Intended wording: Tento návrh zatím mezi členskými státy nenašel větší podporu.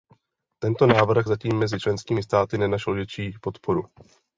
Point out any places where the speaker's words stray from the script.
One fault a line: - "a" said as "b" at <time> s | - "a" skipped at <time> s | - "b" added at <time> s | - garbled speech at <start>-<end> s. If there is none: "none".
none